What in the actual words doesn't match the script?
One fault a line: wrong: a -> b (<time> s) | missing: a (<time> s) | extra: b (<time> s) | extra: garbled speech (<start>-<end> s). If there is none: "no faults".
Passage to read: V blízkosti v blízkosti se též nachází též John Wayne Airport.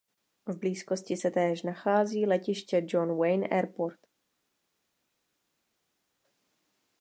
missing: v blízkosti (1.2 s)
wrong: též -> letiště (2.3 s)